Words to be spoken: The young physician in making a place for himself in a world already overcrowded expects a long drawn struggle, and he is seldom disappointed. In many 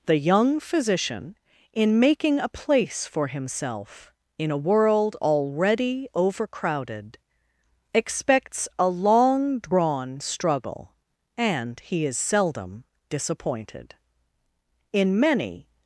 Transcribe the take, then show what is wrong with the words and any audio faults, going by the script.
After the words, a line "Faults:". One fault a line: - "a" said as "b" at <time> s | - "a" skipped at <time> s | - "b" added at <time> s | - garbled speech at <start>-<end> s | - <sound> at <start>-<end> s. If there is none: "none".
The young physician in making a place for himself in a world already overcrowded expects a long drawn struggle, and he is seldom disappointed. In many
Faults:
none